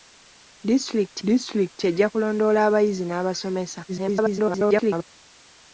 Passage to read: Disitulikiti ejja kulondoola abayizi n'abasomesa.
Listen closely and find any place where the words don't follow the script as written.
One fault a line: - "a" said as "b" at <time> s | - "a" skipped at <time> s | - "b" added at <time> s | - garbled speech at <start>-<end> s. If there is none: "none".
- "disitulikiti" added at 1.3 s
- garbled speech at 3.9-5.1 s